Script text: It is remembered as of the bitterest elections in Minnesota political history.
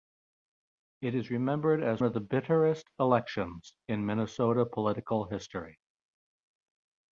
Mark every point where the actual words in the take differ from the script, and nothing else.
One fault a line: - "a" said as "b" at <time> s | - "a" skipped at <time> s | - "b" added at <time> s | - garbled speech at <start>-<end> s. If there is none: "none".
none